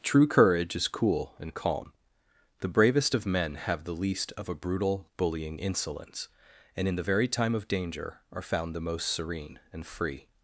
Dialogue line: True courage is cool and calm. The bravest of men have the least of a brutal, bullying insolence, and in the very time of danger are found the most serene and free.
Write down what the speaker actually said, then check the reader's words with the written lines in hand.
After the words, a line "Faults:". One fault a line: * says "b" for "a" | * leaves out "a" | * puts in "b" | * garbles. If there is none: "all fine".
True courage is cool and calm. The bravest of men have the least of a brutal, bullying insolence, and in the very time of danger are found the most serene and free.
Faults:
all fine